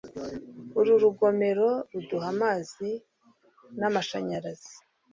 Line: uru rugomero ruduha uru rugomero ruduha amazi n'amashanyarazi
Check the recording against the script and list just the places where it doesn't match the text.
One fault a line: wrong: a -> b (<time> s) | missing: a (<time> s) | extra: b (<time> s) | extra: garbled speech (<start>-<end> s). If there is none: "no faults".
missing: uru rugomero ruduha (2.3 s)